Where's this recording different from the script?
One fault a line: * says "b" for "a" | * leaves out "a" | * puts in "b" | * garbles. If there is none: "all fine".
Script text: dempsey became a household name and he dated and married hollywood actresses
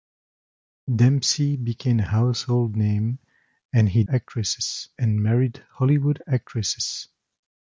* says "actresses" for "dated"